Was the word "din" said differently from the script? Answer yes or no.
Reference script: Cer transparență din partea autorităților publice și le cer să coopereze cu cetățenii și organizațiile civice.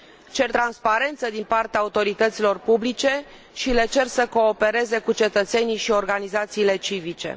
no